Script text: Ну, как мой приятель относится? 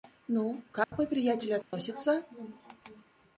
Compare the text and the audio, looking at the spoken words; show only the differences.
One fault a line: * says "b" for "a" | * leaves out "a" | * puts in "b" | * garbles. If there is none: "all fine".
all fine